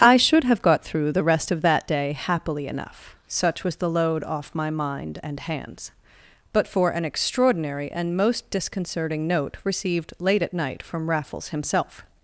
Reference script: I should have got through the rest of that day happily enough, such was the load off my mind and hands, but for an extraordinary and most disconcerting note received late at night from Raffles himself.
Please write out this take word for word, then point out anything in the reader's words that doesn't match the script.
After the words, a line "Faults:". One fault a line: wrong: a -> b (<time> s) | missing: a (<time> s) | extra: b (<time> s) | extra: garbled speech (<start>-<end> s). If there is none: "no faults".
I should have got through the rest of that day happily enough, such was the load off my mind and hands, but for an extraordinary and most disconcerting note received late at night from Raffles himself.
Faults:
no faults